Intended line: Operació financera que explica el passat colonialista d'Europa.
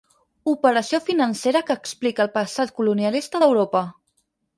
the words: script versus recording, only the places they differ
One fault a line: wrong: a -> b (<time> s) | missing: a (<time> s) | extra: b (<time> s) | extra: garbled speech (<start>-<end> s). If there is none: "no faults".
no faults